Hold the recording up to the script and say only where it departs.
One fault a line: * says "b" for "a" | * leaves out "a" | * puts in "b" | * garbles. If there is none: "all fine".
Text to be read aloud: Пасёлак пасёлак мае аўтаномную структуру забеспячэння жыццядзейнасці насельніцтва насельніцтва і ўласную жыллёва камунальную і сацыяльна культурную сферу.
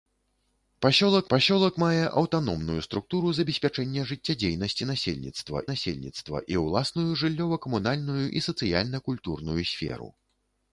all fine